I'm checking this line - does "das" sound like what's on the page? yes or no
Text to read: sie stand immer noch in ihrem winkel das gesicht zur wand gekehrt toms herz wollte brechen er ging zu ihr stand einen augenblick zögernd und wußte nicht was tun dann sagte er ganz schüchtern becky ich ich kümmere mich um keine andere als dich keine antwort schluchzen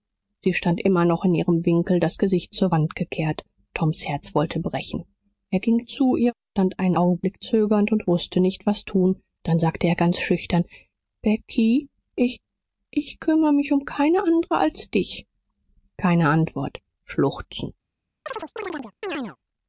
yes